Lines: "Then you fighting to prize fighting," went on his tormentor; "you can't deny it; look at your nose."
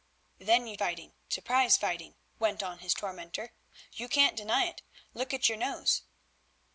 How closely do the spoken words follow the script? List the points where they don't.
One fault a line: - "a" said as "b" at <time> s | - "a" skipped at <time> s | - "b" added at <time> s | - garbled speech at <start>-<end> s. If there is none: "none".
none